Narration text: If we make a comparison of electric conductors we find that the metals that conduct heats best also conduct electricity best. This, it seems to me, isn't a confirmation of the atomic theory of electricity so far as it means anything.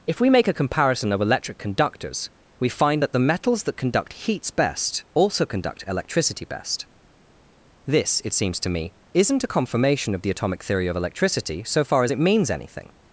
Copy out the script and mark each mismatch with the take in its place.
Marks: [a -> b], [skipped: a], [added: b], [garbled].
If we make a comparison of electric conductors we find that the metals that conduct heats best also conduct electricity best. This, it seems to me, isn't a confirmation of the atomic theory of electricity so far as it means anything.